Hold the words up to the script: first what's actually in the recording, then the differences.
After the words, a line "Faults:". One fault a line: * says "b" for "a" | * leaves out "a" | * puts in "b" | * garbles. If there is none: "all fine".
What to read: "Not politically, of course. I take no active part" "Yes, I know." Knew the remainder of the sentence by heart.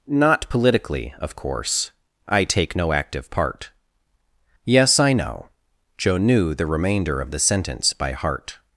"Not politically, of course. I take no active part" "Yes, I know." Joe knew the remainder of the sentence by heart.
Faults:
* puts in "Joe"